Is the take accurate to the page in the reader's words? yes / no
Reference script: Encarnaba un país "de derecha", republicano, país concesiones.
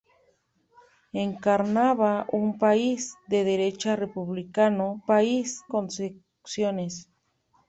yes